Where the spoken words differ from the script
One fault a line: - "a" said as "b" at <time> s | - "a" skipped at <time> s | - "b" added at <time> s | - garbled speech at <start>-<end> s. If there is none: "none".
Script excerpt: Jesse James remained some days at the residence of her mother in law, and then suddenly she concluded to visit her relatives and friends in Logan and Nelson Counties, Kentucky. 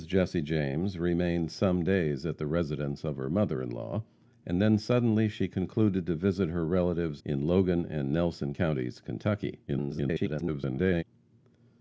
- "and friends" skipped at 7.2 s
- garbled speech at 9.7-11.0 s